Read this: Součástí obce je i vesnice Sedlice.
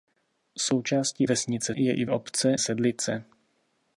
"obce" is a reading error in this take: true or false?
true